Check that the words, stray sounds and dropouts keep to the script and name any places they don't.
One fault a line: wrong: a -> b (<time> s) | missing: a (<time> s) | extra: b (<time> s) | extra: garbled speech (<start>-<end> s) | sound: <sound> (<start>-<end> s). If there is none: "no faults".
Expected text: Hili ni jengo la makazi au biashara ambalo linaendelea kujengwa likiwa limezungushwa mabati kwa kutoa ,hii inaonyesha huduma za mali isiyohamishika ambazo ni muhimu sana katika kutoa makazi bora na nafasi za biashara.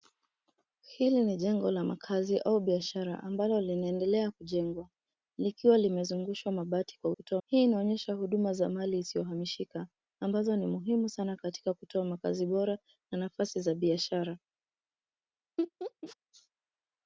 sound: laugh (15.6-16.2 s)